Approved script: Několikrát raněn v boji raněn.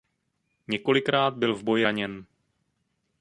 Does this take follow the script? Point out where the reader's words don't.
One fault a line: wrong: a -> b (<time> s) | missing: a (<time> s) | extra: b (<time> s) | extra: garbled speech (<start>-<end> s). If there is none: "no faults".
wrong: raněn -> byl (1.3 s)